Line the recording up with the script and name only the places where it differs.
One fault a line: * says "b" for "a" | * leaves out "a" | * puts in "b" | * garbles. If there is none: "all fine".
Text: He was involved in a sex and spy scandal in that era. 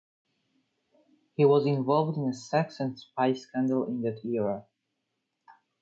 all fine